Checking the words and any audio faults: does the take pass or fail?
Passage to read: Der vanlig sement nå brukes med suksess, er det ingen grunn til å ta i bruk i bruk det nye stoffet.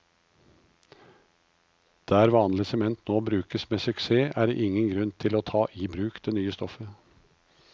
fail